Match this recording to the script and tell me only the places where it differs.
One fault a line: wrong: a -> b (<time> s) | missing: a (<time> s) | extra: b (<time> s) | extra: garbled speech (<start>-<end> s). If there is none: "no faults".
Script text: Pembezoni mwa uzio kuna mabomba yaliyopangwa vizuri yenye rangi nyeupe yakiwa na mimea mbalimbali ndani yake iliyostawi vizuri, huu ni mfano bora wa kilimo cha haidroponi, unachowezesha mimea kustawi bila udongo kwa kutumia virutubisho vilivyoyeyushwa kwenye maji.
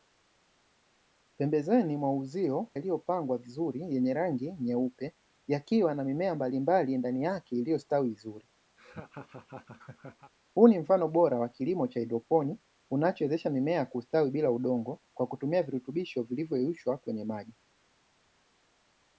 missing: kuna mabomba (2.7 s)